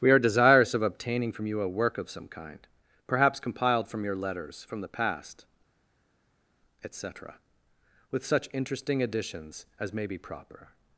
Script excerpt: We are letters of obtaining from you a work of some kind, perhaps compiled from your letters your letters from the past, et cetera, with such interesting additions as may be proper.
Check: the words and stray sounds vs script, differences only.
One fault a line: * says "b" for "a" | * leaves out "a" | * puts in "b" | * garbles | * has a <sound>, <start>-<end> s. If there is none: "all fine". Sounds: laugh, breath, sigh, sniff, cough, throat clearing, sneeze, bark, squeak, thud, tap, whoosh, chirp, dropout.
* says "desirous" for "letters"
* leaves out "your letters"